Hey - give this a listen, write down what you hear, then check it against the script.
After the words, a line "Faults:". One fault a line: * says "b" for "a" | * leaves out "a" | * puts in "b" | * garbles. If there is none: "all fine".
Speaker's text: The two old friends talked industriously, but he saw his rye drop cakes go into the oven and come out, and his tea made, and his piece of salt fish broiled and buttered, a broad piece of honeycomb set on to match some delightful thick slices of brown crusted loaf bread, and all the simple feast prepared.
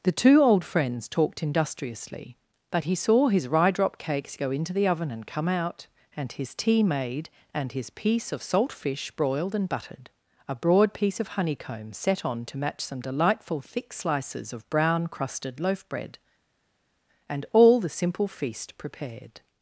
The two old friends talked industriously, but he saw his rye drop cakes go into the oven and come out, and his tea made, and his piece of salt fish broiled and buttered, a broad piece of honeycomb set on to match some delightful thick slices of brown crusted loaf bread, and all the simple feast prepared.
Faults:
all fine